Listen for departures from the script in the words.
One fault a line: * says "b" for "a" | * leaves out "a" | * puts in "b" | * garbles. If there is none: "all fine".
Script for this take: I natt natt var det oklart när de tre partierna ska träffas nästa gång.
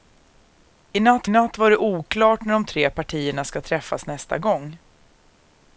all fine